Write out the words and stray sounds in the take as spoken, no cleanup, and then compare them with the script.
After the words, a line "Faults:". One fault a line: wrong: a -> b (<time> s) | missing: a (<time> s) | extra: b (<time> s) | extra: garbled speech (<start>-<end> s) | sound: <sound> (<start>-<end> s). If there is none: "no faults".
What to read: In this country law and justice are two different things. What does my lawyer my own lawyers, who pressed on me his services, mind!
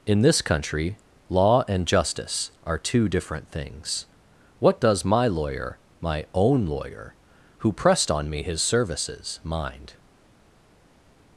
In this country law and justice are two different things. What does my lawyer my own lawyer, who pressed on me his services, mind!
Faults:
wrong: lawyers -> lawyer (6.7 s)